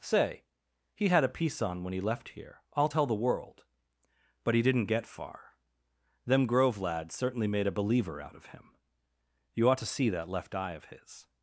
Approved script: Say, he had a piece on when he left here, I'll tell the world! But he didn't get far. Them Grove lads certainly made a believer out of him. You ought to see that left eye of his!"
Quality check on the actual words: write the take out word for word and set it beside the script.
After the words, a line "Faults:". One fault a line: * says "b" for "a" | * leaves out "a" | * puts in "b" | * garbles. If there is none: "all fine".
Say, he had a piece on when he left here, I'll tell the world! But he didn't get far. Them Grove lads certainly made a believer out of him. You ought to see that left eye of his!"
Faults:
all fine